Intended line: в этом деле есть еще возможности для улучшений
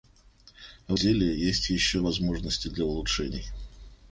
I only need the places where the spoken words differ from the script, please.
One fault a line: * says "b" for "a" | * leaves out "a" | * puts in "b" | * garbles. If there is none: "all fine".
* leaves out "этом"